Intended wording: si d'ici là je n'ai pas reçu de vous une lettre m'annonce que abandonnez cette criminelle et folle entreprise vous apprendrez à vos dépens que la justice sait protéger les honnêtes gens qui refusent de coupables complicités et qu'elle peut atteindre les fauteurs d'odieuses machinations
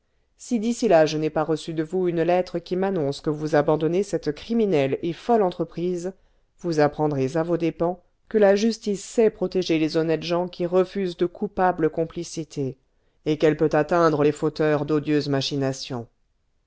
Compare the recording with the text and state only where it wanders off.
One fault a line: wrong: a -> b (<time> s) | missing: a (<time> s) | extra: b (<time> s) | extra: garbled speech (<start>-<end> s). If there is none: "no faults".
extra: qui (2.6 s)
extra: vous (3.3 s)